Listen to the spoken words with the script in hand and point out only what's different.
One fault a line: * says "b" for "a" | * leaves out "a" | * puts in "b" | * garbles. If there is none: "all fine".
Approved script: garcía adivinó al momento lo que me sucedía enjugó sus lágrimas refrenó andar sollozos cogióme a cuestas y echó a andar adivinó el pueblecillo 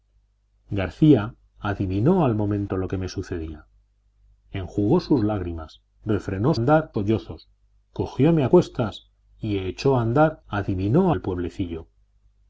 all fine